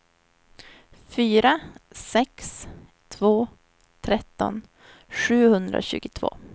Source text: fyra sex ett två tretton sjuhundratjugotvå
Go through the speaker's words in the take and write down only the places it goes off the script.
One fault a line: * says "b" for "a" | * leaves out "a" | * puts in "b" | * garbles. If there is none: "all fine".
* leaves out "ett"